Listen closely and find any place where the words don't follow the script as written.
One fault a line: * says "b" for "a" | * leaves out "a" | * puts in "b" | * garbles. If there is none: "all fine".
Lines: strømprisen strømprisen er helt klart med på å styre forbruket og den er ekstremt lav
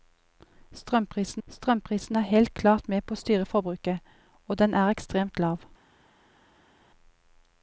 all fine